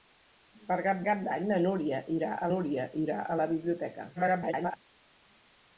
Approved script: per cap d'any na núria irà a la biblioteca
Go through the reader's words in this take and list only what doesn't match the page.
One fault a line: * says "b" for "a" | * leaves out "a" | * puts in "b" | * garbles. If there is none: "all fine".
* puts in "cap"
* puts in "núria irà a"
* garbles